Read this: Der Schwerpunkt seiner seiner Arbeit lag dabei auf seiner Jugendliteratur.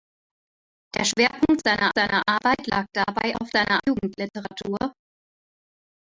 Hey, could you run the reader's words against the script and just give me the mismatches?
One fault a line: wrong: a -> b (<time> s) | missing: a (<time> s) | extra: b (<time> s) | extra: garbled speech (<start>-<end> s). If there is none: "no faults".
no faults